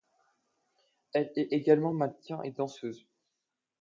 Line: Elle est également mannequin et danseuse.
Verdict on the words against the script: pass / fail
pass